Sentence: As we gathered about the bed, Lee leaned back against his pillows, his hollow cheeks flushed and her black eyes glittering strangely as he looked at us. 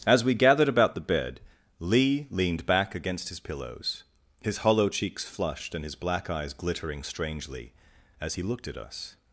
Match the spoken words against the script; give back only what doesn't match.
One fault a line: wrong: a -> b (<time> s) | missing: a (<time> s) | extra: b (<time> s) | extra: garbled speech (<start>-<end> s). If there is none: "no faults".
wrong: her -> his (5.8 s)